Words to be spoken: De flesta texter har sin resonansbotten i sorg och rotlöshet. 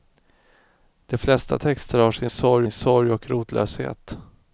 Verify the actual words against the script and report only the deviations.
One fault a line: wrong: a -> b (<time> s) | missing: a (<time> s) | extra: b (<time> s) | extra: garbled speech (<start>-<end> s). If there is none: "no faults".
wrong: resonansbotten -> sorg (2.3 s)